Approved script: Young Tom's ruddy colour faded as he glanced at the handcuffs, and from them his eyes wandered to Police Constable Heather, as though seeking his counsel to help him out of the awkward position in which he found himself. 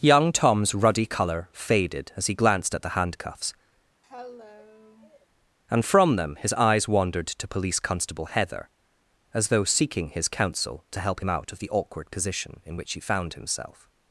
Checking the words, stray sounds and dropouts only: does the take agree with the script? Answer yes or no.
no